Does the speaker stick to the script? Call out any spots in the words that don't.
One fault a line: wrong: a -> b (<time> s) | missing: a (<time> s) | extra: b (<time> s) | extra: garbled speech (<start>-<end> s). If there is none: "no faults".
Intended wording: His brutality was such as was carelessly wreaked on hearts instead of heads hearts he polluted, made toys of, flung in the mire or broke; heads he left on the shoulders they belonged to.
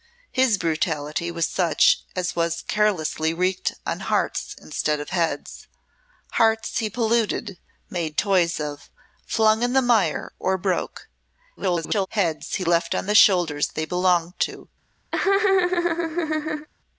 extra: garbled speech (11.6-12.1 s)